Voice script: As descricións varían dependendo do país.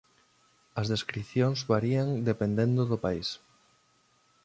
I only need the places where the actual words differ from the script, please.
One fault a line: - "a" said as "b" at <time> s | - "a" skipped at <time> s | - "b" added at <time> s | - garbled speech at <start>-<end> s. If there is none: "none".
none